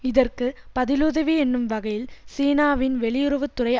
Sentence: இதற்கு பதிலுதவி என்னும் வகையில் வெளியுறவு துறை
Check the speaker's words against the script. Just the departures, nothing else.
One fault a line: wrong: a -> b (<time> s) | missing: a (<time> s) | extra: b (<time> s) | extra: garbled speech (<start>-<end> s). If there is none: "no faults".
extra: சீனாவின் (2.4 s)